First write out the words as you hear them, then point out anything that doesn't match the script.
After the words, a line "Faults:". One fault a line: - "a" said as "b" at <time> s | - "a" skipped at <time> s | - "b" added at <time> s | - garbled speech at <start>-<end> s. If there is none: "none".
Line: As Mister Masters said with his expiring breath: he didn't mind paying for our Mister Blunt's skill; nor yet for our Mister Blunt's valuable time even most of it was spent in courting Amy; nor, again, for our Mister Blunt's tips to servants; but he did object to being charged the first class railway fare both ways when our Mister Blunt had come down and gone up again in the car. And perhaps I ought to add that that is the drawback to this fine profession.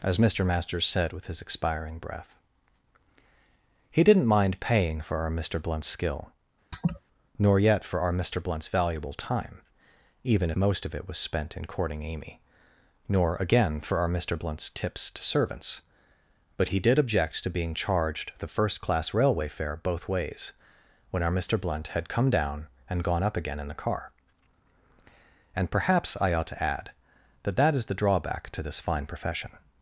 As Mister Masters said with his expiring breath: he didn't mind paying for our Mister Blunt's skill; nor yet for our Mister Blunt's valuable time even most of it was spent in courting Amy; nor, again, for our Mister Blunt's tips to servants; but he did object to being charged the first class railway fare both ways when our Mister Blunt had come down and gone up again in the car. And perhaps I ought to add that that is the drawback to this fine profession.
Faults:
none